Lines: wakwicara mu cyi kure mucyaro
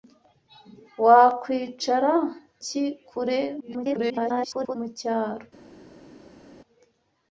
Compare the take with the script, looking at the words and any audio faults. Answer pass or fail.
fail